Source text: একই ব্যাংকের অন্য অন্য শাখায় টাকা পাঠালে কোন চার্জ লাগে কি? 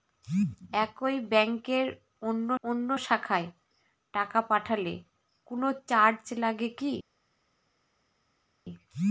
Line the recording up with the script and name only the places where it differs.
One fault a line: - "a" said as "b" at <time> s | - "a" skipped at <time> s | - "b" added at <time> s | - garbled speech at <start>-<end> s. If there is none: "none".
none